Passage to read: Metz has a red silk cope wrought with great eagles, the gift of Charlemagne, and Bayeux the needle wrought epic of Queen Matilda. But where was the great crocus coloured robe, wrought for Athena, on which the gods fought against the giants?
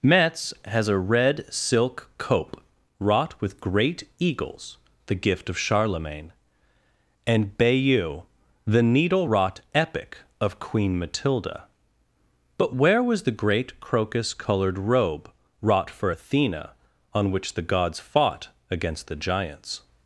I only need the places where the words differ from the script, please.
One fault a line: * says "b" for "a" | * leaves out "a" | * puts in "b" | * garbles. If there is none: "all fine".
all fine